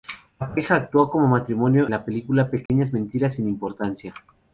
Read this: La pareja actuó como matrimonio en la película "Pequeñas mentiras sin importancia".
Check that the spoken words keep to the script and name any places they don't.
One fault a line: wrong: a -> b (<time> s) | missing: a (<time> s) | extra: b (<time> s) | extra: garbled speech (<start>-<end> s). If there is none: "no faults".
missing: en (1.9 s)